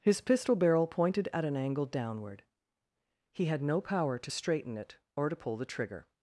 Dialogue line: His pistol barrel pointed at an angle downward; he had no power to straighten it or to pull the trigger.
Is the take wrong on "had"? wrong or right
right